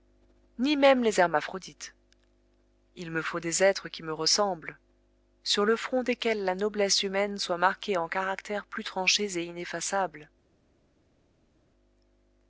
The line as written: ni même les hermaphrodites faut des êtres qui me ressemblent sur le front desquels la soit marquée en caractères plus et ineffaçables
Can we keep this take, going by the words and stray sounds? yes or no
no